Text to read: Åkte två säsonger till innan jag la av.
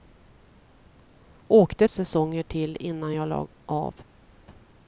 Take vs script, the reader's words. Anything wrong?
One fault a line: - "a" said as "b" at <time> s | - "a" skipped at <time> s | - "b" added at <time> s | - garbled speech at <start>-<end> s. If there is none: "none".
- "två" skipped at 1.9 s